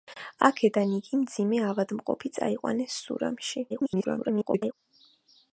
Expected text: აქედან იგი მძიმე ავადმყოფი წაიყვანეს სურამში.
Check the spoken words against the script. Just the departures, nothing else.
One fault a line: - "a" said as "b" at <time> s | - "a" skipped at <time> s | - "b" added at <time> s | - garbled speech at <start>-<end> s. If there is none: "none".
- garbled speech at 3.7-4.7 s